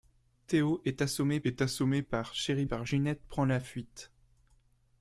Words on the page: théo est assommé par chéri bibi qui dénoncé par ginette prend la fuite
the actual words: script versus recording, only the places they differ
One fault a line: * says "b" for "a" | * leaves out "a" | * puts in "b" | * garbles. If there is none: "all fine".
* puts in "est assommé"
* leaves out "bibi qui dénoncé"